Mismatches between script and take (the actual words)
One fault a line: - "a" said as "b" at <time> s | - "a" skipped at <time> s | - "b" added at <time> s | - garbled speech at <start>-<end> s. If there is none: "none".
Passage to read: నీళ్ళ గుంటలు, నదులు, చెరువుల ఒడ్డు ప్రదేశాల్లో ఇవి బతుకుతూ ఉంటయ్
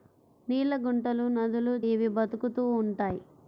- "చెరువుల ఒడ్డు ప్రదేశాల్లో" skipped at 1.7 s